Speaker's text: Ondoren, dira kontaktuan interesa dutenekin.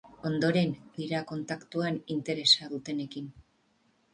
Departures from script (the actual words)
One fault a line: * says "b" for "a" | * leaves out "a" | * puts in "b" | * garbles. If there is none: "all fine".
all fine